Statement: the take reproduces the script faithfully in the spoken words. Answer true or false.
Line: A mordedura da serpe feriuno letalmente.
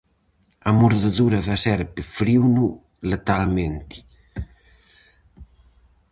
true